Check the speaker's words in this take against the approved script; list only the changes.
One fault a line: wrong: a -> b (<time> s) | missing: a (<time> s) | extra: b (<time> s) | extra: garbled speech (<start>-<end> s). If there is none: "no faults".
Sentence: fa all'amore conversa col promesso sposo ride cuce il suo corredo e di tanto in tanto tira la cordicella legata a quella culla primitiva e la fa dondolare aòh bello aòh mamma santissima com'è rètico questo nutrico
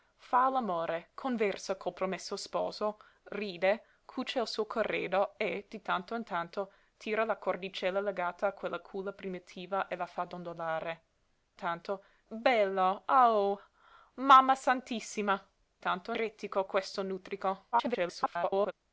wrong: aòh -> tanto (11.5 s)
wrong: com'è -> tanto (15.8 s)
extra: garbled speech (17.7-18.7 s)